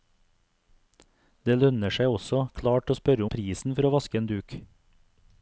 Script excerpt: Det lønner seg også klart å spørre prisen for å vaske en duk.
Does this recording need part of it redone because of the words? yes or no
no